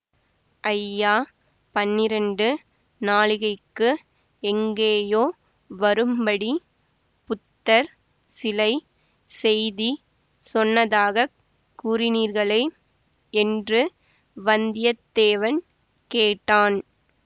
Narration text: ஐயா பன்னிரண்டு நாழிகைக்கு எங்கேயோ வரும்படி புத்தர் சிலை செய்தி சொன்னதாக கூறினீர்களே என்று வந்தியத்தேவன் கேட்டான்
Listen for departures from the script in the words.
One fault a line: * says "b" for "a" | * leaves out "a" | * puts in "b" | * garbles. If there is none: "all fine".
all fine